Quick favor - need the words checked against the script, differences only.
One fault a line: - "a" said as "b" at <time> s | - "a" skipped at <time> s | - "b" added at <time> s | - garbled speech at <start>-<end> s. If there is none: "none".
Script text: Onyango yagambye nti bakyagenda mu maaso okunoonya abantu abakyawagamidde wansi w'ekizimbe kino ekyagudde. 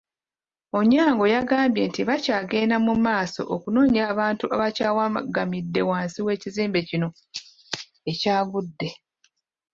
none